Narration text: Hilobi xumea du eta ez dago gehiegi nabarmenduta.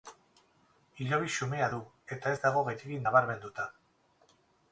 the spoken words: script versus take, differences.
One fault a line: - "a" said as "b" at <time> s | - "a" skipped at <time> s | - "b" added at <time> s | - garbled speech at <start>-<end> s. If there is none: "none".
none